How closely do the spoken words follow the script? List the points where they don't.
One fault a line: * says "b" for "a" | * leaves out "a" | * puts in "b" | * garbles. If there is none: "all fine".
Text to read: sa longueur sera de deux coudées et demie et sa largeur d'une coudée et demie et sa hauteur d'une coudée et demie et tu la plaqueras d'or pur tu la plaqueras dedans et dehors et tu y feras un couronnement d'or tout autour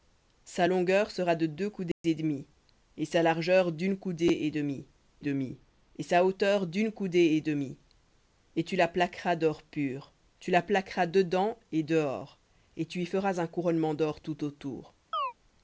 * puts in "demie"